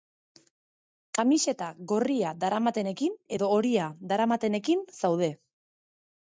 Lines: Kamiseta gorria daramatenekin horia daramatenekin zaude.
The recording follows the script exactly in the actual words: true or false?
false